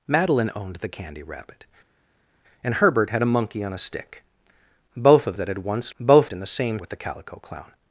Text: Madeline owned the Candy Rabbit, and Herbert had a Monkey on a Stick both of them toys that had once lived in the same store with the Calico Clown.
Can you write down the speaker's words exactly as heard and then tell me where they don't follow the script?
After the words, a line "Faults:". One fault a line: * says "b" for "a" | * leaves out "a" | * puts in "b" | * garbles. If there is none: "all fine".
Madeline owned the Candy Rabbit, and Herbert had a Monkey on a Stick both of that had once both in the same with the Calico Clown.
Faults:
* leaves out "them toys"
* says "both" for "lived"
* leaves out "store"